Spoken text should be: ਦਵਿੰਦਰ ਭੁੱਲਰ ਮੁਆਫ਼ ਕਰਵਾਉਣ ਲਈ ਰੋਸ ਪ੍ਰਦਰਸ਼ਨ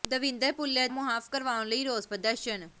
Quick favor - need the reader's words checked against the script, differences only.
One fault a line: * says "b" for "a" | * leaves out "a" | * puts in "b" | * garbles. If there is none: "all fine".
all fine